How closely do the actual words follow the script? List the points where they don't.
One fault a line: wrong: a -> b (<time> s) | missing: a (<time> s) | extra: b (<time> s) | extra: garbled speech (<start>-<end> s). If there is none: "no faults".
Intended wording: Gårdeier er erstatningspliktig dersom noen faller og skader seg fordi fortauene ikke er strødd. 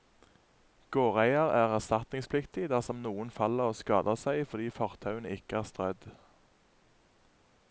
no faults